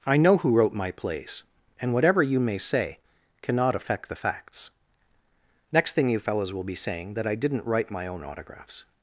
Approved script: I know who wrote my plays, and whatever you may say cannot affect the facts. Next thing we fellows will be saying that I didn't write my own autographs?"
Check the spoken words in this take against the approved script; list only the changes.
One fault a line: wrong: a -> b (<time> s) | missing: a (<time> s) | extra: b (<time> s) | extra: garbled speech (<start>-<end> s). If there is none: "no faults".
wrong: we -> you (6.1 s)